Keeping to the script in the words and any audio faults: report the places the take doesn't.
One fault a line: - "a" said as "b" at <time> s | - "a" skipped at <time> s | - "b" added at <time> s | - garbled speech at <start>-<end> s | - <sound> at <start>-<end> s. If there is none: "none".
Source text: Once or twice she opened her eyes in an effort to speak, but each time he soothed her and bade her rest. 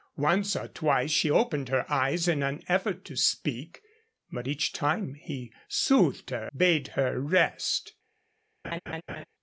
- "and" skipped at 6.5 s
- laugh at 8.6-9.3 s